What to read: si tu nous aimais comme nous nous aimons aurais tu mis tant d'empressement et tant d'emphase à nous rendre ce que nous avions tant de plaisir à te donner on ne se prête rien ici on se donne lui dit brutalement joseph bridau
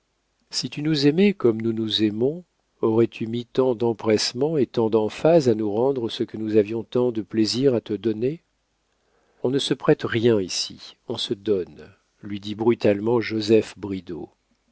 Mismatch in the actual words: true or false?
false